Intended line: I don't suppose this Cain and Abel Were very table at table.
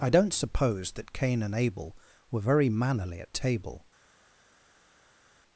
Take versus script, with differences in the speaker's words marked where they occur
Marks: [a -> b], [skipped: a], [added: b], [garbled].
I don't suppose [this -> that] Cain and Abel Were very [table -> mannerly] at table.